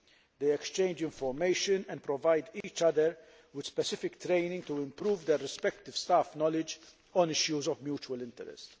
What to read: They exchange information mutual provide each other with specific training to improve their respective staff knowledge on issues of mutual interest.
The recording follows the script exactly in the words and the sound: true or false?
false